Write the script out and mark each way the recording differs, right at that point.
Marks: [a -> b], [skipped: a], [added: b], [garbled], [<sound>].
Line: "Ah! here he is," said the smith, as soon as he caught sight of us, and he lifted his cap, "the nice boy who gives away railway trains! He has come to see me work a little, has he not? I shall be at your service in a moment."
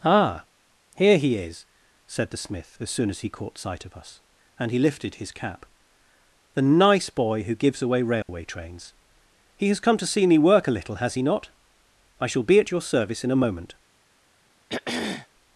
"Ah! here he is," said the smith, as soon as he caught sight of us, and he lifted his cap, "the nice boy who gives away railway [dropout] trains! He has come to see me work a little, has he not? I shall be at your service in a moment." [throat clearing]